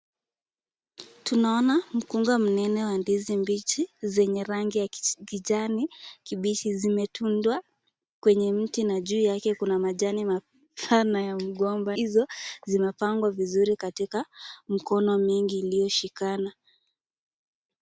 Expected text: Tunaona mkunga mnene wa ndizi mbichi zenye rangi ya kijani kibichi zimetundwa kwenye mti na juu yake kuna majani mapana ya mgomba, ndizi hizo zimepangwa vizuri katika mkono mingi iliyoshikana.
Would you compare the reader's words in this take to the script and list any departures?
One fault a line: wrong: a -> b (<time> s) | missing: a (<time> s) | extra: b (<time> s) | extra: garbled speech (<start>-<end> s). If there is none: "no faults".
missing: ndizi (12.0 s)